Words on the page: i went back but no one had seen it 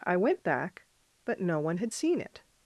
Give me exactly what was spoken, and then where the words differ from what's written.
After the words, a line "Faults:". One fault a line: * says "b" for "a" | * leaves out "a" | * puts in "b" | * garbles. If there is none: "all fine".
i went back but no one had seen it
Faults:
all fine